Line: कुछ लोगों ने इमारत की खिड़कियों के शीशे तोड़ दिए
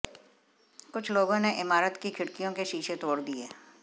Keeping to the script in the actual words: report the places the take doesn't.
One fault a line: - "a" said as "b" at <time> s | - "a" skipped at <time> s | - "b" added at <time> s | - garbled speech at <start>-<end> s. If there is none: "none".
none